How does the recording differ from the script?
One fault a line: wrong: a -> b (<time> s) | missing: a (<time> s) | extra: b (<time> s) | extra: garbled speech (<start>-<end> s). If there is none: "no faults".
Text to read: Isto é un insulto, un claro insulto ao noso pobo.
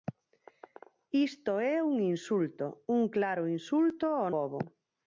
missing: noso (4.3 s)